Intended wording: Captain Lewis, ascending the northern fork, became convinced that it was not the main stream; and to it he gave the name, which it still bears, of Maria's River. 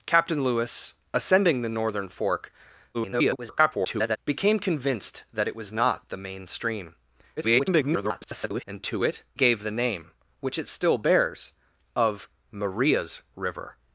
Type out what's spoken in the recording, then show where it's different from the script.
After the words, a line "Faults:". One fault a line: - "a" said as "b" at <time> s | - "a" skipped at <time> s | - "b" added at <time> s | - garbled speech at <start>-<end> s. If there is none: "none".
Captain Lewis, ascending the northern fork, [garbled] became convinced that it was not the main stream; [garbled] and to it gave the name, which it still bears, of Maria's River.
Faults:
- garbled speech at 2.9-4.2 s
- garbled speech at 7.4-8.6 s
- "he" skipped at 9.2 s